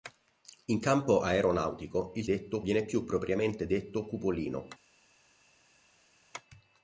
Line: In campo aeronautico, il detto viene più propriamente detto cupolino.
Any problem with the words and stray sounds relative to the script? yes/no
no